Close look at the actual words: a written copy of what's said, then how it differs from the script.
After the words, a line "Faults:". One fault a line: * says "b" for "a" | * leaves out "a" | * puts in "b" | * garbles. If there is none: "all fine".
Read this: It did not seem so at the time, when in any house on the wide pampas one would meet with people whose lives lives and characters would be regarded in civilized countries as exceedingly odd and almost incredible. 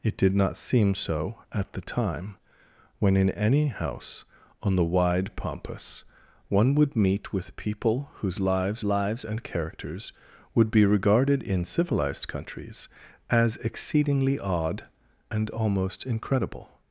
It did not seem so at the time, when in any house on the wide pampas one would meet with people whose lives lives and characters would be regarded in civilized countries as exceedingly odd and almost incredible.
Faults:
all fine